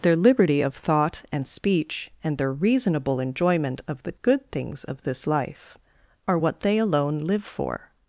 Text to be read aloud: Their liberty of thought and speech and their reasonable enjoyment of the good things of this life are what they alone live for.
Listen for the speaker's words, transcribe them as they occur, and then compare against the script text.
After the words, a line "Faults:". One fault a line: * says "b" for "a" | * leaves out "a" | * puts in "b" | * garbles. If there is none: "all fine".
Their liberty of thought and speech and their reasonable enjoyment of the good things of this life are what they alone live for.
Faults:
all fine